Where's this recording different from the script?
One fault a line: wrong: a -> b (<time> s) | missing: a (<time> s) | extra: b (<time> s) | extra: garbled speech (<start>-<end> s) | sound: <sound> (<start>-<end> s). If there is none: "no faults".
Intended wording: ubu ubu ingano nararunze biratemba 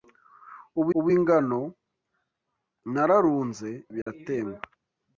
sound: dropout (4.0-4.1 s)